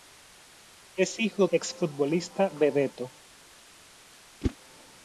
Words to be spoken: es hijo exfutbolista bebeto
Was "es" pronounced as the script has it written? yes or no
yes